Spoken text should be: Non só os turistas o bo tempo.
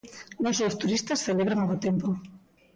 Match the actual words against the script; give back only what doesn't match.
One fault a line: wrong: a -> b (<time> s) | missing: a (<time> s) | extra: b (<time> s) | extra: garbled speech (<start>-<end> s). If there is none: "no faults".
extra: celebran (1.3 s)